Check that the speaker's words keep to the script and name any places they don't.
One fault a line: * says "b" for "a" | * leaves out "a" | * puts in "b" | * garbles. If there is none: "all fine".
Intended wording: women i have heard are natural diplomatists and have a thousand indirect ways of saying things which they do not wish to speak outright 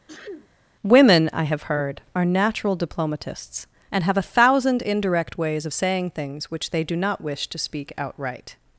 all fine